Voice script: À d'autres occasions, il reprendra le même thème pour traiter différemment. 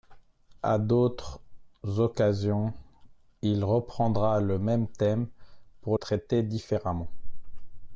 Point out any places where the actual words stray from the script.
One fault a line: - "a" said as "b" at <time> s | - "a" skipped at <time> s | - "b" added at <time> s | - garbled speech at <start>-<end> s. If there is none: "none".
none